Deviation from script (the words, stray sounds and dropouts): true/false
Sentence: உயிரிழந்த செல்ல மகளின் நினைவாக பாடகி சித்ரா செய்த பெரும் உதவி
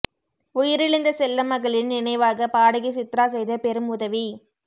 false